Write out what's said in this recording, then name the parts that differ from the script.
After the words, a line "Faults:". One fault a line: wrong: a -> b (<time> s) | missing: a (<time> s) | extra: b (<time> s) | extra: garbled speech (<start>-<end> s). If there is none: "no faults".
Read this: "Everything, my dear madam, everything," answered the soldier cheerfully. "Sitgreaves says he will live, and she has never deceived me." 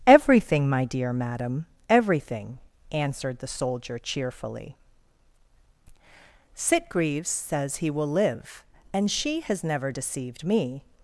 "Everything, my dear madam, everything," answered the soldier cheerfully. "Sitgreaves says he will live, and she has never deceived me."
Faults:
no faults